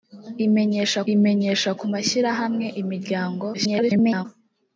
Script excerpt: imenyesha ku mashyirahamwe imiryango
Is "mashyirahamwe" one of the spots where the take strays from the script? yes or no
no